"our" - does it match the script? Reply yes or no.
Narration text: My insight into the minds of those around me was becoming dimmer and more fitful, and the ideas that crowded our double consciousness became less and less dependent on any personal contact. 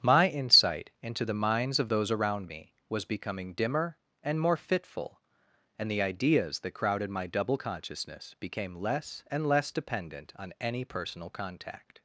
no